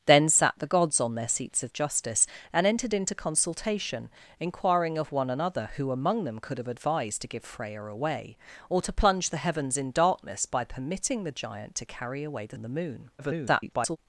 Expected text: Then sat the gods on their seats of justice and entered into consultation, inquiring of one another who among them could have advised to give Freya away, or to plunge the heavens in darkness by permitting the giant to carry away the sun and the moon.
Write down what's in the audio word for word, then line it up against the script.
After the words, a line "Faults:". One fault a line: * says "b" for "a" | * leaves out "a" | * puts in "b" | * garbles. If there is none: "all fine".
Then sat the gods on their seats of justice and entered into consultation, inquiring of one another who among them could have advised to give Freya away, or to plunge the heavens in darkness by permitting the giant to carry away the and the moon. [garbled]
Faults:
* leaves out "sun"
* garbles